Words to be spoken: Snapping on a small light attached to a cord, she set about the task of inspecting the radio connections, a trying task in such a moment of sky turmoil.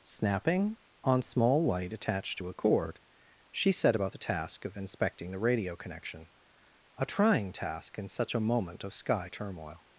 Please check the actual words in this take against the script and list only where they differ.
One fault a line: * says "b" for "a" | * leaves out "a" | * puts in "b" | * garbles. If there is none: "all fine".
* leaves out "a"
* says "connection" for "connections"